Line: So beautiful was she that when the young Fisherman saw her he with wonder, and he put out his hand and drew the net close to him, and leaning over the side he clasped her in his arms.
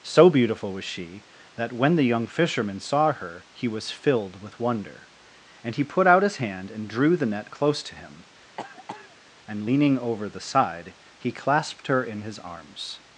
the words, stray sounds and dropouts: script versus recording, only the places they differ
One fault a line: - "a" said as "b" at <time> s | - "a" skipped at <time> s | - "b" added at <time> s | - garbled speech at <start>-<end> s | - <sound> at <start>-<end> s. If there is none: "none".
- "was filled" added at 3.7 s
- cough at 8.6-9.2 s